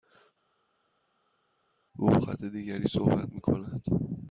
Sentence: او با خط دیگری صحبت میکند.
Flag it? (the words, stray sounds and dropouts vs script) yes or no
no